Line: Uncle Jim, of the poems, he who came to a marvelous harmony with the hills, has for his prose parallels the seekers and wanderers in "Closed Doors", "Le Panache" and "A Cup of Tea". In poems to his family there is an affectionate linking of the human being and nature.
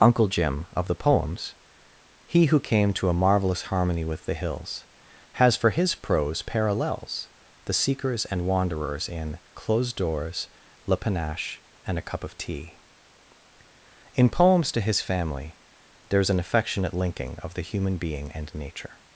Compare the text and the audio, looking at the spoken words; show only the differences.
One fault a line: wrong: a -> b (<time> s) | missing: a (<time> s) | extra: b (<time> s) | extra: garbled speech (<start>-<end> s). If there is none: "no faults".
no faults